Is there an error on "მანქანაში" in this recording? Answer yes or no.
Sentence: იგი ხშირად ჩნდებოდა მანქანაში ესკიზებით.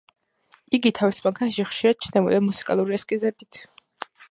yes